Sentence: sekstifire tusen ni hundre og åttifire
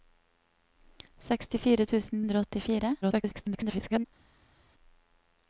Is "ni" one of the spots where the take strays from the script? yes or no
yes